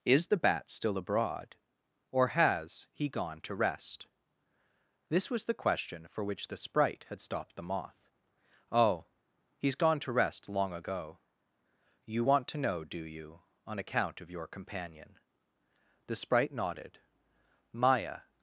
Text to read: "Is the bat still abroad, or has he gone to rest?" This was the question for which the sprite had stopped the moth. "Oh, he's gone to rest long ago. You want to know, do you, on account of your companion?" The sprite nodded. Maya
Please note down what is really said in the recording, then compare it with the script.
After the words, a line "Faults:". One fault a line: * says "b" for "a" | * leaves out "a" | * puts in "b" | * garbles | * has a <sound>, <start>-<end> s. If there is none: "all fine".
"Is the bat still abroad, or has he gone to rest?" This was the question for which the sprite had stopped the moth. "Oh, he's gone to rest long ago. You want to know, do you, on account of your companion?" The sprite nodded. Maya
Faults:
all fine